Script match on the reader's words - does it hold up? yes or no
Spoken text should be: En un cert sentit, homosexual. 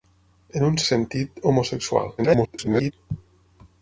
no